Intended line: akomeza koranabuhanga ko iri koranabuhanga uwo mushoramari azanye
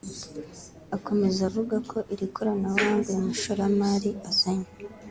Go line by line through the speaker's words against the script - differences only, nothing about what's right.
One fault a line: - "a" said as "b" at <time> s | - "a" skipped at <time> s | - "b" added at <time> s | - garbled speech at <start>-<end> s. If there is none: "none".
- "koranabuhanga" said as "avuga" at 1.5 s
- "uwo" said as "uyu" at 3.1 s